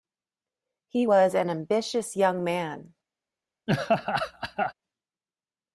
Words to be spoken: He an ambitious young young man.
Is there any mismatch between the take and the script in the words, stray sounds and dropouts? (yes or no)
yes